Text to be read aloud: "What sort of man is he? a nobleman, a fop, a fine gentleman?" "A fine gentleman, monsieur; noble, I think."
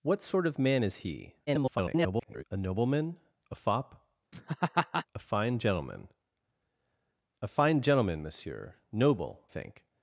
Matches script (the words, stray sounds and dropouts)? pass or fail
fail